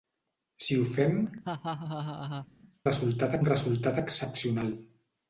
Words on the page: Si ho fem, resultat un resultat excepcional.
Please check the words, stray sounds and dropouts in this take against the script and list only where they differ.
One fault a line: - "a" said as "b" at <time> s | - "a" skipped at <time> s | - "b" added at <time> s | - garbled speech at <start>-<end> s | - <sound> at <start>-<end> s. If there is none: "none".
- laugh at 1.4-2.5 s